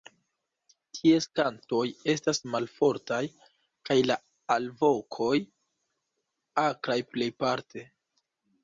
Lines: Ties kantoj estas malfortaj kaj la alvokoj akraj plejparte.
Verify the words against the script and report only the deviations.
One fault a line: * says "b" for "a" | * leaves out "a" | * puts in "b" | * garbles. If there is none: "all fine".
all fine